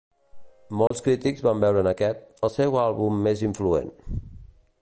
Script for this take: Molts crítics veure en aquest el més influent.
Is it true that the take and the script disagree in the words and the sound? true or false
true